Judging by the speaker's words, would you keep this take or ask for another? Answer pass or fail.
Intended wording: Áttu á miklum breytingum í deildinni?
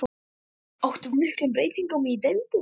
pass